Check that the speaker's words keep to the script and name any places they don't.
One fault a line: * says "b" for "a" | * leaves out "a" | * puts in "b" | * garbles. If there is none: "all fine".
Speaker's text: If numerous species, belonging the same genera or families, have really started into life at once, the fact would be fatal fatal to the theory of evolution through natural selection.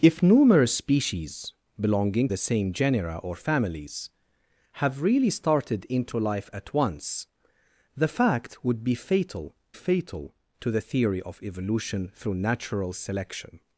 all fine